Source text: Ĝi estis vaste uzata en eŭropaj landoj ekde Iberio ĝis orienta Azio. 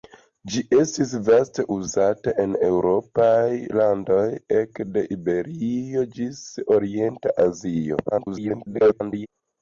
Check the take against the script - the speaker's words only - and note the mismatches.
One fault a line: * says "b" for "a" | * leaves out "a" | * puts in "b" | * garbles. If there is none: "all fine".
* garbles